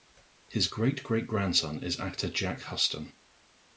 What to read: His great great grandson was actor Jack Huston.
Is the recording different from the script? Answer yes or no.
yes